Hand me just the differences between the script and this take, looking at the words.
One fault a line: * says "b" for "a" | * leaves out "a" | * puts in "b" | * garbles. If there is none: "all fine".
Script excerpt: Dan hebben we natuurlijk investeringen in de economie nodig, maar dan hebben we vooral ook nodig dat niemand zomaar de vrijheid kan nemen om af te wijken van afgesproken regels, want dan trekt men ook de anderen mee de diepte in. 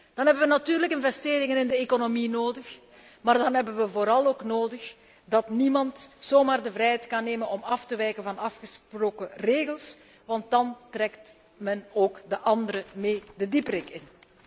all fine